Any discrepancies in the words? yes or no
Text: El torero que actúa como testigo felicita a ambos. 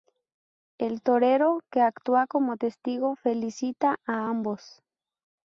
no